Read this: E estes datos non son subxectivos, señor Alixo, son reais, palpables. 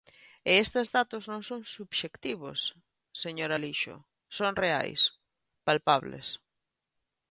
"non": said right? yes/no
yes